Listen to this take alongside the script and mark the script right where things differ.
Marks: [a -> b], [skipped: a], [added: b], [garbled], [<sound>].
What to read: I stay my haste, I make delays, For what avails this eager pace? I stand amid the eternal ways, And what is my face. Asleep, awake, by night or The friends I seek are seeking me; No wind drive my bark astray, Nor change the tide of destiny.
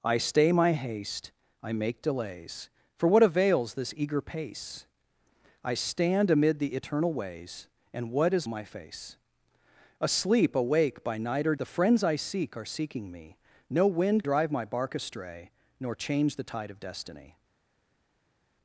I stay my haste, I make delays, For what avails this eager pace? I stand amid the eternal ways, And what is my face. Asleep, awake, by night or The friends I seek are seeking me; No wind drive my bark astray, Nor change the tide of destiny.